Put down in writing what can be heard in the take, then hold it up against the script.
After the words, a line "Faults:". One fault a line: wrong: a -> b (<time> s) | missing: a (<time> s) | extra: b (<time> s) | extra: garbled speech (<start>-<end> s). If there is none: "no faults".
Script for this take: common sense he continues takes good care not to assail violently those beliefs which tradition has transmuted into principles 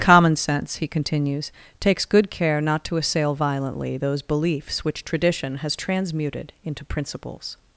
common sense he continues takes good care not to assail violently those beliefs which tradition has transmuted into principles
Faults:
no faults